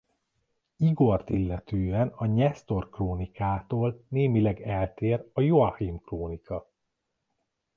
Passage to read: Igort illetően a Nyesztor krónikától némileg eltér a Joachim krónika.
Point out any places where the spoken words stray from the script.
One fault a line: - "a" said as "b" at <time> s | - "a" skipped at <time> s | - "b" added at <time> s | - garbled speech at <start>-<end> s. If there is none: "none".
none